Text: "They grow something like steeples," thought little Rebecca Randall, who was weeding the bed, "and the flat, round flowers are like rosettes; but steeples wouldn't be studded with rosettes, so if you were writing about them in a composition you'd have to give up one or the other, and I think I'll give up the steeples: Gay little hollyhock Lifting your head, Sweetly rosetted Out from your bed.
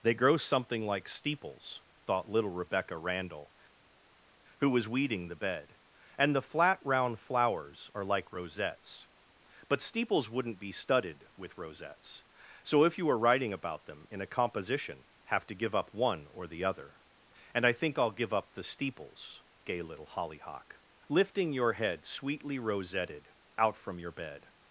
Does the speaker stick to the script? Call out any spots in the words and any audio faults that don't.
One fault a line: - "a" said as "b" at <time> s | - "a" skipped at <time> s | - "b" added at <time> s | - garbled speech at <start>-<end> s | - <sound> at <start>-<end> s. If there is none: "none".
- "you'd" skipped at 15.0 s